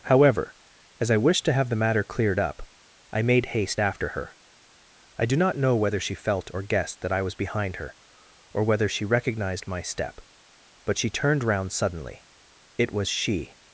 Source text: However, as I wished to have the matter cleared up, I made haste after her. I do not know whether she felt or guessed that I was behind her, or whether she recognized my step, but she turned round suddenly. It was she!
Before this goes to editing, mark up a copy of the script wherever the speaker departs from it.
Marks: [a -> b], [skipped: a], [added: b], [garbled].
However, as I wished to have the matter cleared up, I made haste after her. I do not know whether she felt or guessed that I was behind her, or whether she recognized my step, but she turned round suddenly. It was she!